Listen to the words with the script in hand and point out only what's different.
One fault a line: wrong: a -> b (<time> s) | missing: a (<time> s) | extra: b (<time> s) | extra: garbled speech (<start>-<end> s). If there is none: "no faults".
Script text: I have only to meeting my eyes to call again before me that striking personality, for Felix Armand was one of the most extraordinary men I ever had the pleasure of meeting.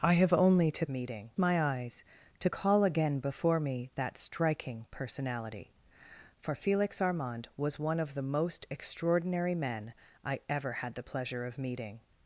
no faults